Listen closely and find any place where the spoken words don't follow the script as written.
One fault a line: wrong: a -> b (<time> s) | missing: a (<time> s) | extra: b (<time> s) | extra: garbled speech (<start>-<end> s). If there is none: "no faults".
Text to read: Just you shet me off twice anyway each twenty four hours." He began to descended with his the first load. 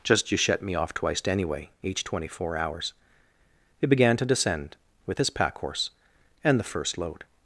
wrong: twice -> twiced (0.9 s)
wrong: descended -> descend (4.2 s)
extra: pack horse and (5.3 s)